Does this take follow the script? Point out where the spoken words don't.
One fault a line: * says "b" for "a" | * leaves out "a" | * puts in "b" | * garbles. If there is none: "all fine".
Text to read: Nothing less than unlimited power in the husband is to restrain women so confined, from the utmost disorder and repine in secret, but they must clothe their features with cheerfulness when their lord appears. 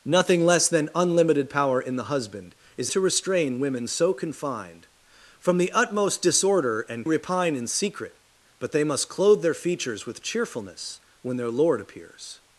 all fine